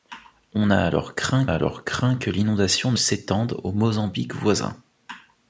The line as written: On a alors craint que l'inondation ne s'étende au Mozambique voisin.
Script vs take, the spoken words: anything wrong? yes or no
yes